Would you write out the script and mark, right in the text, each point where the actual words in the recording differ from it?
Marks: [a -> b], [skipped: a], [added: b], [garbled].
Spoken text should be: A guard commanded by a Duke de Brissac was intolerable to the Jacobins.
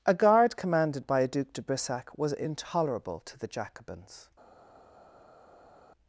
A guard commanded by a Duke de Brissac was intolerable to the Jacobins.